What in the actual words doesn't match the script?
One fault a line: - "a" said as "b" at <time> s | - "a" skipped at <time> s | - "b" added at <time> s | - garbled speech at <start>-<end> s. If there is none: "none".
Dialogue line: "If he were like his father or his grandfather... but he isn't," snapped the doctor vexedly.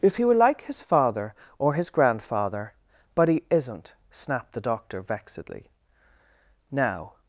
- "Now" added at 6.7 s